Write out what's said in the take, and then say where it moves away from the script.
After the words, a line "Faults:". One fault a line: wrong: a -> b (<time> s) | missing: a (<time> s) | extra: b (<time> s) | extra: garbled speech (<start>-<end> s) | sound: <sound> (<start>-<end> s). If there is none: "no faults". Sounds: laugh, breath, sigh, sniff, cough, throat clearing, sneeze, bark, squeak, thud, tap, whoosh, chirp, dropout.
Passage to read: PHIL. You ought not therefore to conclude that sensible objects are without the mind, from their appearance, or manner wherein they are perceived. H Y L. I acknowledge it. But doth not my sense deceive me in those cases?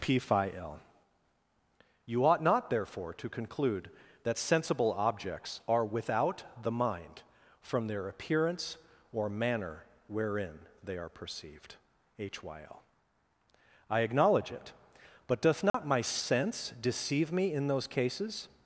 PHIL. You ought not therefore to conclude that sensible objects are without the mind, from their appearance, or manner wherein they are perceived. H Y L. I acknowledge it. But doth not my sense deceive me in those cases?
Faults:
sound: dropout (15.7-15.7 s)